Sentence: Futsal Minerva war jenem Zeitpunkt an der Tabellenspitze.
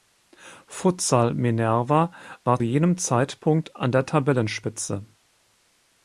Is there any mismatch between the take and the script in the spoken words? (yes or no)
no